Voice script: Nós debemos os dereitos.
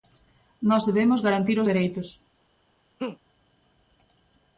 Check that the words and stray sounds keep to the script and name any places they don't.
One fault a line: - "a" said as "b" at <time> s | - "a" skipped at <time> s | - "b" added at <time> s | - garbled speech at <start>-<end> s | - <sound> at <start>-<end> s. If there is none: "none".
- "garantir" added at 1.2 s
- laugh at 3.0-3.2 s